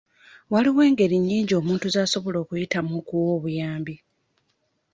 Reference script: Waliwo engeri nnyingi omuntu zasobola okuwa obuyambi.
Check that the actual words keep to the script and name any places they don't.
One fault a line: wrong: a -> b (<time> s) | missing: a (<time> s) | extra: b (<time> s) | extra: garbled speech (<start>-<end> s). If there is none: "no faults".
extra: okuyitamu (2.4 s)